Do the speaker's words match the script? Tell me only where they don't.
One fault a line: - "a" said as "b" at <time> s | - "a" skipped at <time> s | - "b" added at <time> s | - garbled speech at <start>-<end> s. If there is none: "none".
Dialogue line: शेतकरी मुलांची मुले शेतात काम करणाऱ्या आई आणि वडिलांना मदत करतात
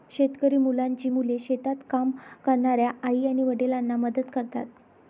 none